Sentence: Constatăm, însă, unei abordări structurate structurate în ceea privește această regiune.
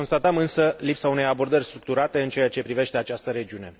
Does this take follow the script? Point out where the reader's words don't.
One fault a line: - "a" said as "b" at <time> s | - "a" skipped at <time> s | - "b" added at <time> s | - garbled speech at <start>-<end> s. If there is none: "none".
- "lipsa" added at 0.8 s
- "structurate" skipped at 2.2 s
- "ce" added at 2.5 s